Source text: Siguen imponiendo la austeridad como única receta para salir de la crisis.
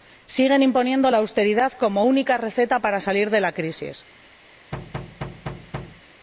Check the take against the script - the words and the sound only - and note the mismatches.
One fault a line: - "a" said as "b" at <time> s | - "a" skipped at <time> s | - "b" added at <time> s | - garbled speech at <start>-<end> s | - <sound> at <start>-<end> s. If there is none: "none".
- thud at 4.7-6.0 s